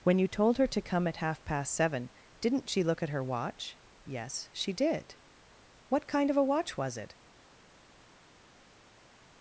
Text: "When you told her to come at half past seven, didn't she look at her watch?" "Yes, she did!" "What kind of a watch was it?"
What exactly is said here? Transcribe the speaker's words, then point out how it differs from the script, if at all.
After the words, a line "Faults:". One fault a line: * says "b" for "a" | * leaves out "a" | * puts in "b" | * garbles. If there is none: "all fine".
"When you told her to come at half past seven, didn't she look at her watch?" "Yes, she did!" "What kind of a watch was it?"
Faults:
all fine